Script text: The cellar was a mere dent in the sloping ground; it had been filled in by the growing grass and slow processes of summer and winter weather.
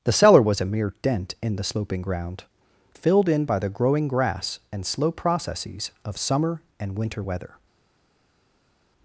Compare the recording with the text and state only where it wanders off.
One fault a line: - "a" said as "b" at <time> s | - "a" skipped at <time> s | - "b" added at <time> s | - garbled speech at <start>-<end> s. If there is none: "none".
- "it had been" skipped at 2.5 s